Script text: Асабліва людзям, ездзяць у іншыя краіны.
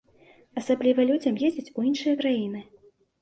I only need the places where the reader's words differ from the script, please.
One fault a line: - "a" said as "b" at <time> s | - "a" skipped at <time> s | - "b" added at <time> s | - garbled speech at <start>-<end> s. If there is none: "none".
none